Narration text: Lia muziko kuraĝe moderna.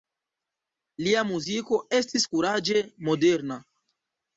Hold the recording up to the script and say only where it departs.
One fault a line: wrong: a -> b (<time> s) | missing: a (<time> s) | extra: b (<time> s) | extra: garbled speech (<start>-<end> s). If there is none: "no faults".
extra: estis (2.0 s)